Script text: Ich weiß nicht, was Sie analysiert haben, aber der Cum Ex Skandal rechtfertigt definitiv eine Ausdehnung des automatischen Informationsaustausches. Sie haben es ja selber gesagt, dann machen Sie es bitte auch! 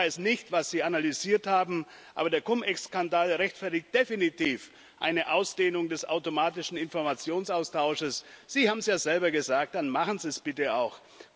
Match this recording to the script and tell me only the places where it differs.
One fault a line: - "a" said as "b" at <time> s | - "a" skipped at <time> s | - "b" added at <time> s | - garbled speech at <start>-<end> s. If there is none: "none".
none